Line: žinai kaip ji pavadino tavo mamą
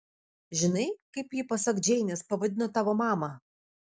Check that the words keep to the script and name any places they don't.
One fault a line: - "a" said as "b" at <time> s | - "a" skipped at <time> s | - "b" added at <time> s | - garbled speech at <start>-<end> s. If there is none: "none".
- "pasak džeinės" added at 1.5 s